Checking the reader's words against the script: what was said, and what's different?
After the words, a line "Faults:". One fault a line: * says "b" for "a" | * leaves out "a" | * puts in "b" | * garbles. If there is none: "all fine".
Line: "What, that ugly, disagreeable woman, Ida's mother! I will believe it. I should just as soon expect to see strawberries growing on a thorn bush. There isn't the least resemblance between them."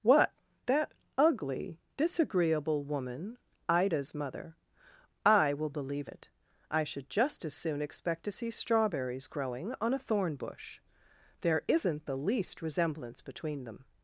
"What, that ugly, disagreeable woman, Ida's mother! I will believe it. I should just as soon expect to see strawberries growing on a thorn bush. There isn't the least resemblance between them."
Faults:
all fine